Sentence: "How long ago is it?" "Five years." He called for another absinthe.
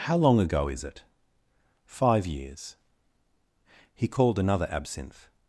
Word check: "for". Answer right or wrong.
wrong